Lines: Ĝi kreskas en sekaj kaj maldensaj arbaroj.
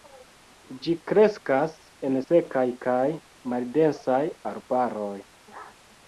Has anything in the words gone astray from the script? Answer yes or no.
no